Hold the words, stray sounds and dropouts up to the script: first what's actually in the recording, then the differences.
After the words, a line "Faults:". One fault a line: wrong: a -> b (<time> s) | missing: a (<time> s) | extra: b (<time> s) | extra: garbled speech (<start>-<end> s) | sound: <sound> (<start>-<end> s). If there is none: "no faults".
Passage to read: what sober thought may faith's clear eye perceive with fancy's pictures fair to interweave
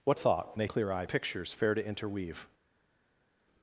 what thought may clear eye pictures fair to interweave
Faults:
missing: sober (0.2 s)
missing: faith's (0.7 s)
missing: perceive with fancy's (1.1 s)